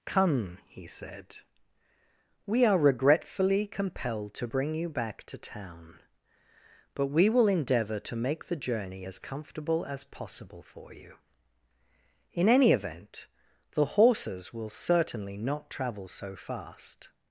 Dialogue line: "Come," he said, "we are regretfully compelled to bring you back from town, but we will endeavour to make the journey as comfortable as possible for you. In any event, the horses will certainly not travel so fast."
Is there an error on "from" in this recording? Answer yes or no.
yes